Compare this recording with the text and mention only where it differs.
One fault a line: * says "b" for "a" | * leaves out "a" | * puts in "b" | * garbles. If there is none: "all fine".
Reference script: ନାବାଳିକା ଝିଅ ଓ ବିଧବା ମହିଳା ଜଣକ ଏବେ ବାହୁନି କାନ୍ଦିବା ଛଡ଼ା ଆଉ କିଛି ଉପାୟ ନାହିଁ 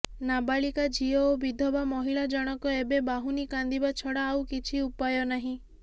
all fine